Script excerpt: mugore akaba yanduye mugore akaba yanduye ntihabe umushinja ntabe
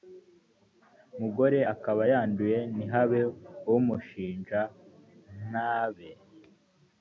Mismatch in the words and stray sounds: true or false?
true